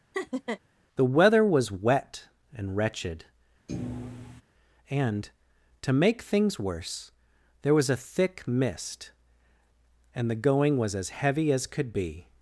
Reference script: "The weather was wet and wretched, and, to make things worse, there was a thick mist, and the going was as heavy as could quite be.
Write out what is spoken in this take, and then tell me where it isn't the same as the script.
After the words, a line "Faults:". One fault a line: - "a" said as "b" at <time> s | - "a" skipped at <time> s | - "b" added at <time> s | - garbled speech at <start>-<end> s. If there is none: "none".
"The weather was wet and wretched, and, to make things worse, there was a thick mist, and the going was as heavy as could be.
Faults:
- "quite" skipped at 11.9 s